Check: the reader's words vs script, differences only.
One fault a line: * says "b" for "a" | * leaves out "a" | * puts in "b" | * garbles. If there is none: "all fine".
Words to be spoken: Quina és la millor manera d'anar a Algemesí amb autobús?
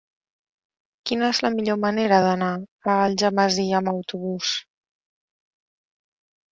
all fine